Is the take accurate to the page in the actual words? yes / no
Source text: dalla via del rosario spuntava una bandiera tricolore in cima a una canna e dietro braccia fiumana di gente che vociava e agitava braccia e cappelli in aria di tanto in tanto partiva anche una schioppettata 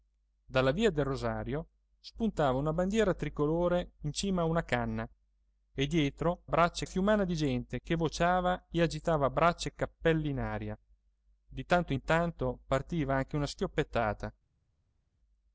yes